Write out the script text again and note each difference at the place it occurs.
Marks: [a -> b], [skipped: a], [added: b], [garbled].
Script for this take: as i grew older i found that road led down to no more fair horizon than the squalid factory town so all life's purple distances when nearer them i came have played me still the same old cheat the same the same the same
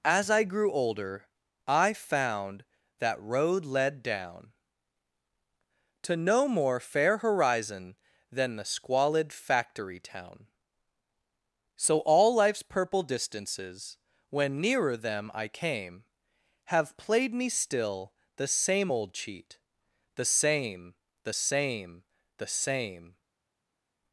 as i grew older i found that road led down to no more fair horizon than the squalid factory town so all life's purple distances when nearer them i came have played me still the same old cheat the same the same the same